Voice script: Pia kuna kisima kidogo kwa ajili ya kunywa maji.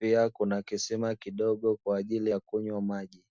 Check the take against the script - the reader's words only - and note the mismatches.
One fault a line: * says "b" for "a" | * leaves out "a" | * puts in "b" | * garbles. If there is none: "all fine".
all fine